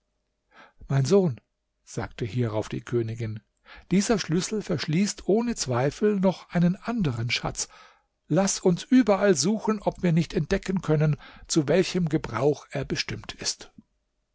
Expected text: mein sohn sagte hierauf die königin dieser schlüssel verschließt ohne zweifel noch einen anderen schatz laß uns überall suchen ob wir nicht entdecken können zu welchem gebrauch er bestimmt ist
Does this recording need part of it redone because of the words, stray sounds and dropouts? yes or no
no